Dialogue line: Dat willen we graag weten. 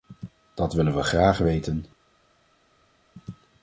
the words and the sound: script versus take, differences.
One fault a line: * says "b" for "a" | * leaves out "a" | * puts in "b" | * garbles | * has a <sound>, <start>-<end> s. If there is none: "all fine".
all fine